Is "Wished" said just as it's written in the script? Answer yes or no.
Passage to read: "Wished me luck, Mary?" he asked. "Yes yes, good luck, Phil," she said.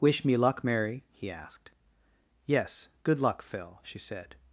no